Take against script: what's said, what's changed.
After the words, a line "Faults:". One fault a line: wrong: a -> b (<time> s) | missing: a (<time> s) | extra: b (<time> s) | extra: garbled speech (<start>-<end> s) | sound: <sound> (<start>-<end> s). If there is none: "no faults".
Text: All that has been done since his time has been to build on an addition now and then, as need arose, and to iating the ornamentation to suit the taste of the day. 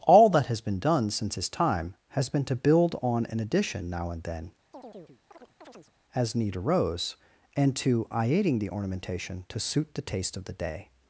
All that has been done since his time has been to build on an addition now and then, as need arose, and to iating the ornamentation to suit the taste of the day.
Faults:
sound: chirp (4.7-5.9 s)